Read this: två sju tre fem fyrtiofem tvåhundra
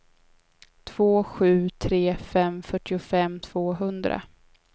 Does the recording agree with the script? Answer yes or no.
yes